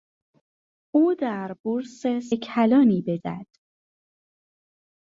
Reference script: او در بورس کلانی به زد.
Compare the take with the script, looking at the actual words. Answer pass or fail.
pass